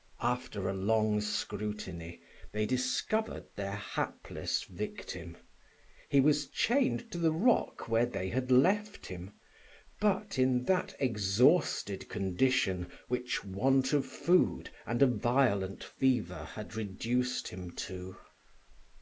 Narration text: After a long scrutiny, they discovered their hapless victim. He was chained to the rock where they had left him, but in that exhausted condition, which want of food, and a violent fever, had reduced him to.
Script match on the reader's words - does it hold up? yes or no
yes